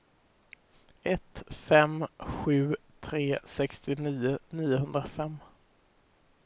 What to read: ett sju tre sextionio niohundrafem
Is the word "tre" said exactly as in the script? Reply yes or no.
yes